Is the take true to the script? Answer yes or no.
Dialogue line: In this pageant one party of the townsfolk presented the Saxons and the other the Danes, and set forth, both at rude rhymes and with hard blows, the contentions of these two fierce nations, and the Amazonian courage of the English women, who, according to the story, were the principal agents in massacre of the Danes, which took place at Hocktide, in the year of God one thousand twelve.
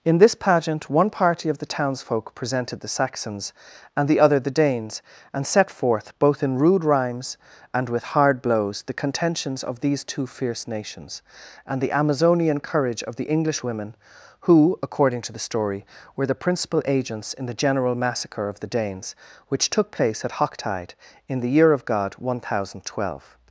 no